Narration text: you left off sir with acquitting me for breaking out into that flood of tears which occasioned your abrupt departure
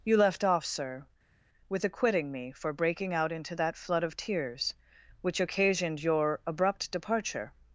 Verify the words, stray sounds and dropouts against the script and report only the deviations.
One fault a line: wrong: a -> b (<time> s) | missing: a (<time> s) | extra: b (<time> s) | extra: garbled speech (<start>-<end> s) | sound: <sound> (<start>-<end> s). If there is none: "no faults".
no faults